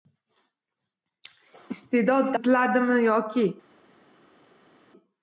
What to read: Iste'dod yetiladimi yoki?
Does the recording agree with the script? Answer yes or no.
yes